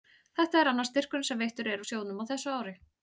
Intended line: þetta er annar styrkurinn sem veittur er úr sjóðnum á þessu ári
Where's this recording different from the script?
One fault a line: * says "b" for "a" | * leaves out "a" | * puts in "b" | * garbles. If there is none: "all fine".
all fine